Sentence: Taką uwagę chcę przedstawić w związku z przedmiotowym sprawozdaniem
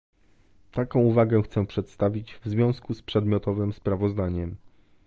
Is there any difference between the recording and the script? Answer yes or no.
no